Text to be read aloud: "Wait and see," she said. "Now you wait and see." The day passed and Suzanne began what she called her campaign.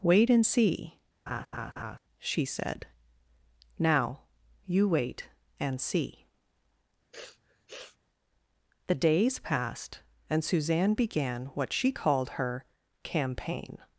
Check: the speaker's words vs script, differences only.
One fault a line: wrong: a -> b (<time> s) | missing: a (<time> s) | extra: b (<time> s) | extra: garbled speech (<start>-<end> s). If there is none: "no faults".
wrong: day -> days (8.9 s)